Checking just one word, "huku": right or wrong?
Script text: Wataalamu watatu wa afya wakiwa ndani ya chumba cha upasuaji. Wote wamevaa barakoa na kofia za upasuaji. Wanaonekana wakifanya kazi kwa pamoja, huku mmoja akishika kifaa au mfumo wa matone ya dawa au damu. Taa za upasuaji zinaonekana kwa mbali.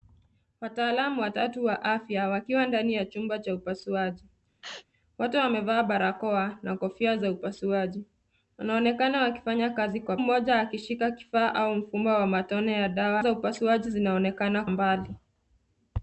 wrong